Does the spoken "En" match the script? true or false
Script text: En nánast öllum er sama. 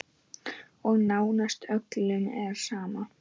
false